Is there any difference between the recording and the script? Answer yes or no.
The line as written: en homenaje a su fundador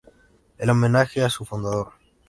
no